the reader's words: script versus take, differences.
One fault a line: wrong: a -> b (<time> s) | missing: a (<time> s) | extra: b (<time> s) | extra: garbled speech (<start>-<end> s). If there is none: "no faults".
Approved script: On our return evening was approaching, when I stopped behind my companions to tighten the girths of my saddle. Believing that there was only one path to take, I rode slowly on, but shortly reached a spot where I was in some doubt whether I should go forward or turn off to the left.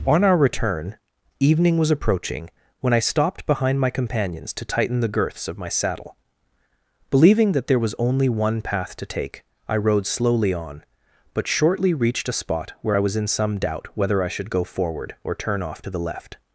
no faults